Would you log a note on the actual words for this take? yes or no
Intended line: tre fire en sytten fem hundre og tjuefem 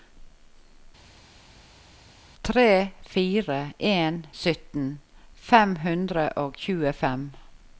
no